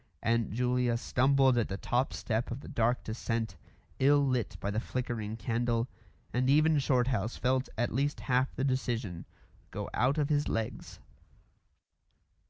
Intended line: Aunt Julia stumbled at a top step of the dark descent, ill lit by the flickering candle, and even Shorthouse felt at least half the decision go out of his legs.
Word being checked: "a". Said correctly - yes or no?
no